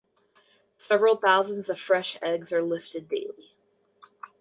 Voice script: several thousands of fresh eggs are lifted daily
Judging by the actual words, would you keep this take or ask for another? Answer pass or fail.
pass